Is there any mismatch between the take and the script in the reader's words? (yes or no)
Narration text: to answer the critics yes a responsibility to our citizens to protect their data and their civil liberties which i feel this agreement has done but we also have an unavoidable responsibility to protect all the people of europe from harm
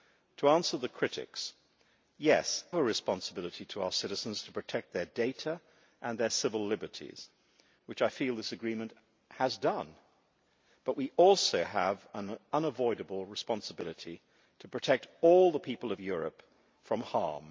no